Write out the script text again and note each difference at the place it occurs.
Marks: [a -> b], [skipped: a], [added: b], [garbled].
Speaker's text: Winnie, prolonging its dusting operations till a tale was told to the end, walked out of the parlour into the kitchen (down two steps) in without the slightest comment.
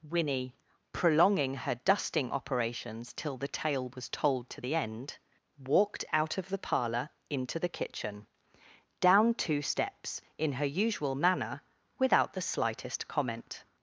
Winnie, prolonging [its -> her] dusting operations till [a -> the] tale was told to the end, walked out of the parlour into the kitchen (down two steps) in [added: her usual manner] without the slightest comment.